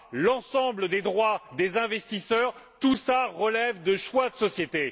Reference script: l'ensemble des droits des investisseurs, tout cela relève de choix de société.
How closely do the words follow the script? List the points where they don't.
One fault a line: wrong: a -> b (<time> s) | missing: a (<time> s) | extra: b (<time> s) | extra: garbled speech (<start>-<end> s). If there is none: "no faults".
no faults